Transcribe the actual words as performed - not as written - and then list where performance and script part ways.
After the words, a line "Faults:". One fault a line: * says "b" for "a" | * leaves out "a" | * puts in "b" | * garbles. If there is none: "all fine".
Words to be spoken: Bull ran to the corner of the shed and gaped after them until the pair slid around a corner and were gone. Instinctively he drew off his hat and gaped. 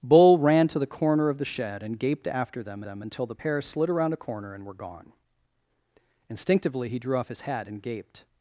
Bull ran to the corner of the shed and gaped after them them until the pair slid around a corner and were gone. Instinctively he drew off his hat and gaped.
Faults:
* puts in "them"